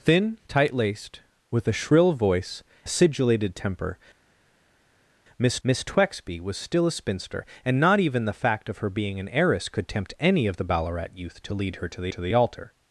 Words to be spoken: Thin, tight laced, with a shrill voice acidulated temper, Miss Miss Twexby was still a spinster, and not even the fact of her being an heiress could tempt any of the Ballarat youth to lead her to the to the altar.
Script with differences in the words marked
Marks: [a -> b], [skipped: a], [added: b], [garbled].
Thin, tight laced, with a shrill voice acidulated temper, Miss Miss Twexby was still a spinster, and not even the fact of her being an heiress could tempt any of the Ballarat youth to lead her to the to the altar.